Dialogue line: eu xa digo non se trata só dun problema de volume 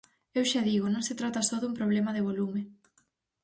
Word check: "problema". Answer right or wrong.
right